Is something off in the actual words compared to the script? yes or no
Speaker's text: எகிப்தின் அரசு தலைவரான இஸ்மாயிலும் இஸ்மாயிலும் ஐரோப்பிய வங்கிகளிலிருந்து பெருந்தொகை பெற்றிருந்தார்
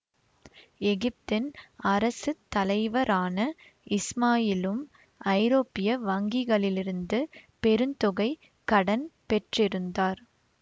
yes